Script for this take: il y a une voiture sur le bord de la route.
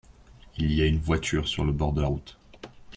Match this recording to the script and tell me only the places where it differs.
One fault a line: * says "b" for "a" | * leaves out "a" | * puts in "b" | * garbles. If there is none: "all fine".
all fine